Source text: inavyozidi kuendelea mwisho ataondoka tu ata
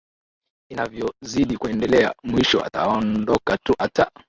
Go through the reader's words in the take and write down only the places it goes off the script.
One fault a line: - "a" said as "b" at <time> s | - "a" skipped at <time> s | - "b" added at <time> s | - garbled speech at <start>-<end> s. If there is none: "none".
none